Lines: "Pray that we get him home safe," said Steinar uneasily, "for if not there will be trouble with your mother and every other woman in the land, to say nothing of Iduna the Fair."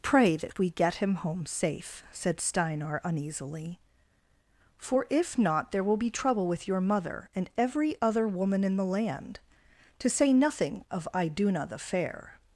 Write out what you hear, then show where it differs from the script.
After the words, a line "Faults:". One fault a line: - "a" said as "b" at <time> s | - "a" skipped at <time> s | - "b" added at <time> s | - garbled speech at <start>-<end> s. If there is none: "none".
"Pray that we get him home safe," said Steinar uneasily, "for if not there will be trouble with your mother and every other woman in the land, to say nothing of Iduna the Fair."
Faults:
none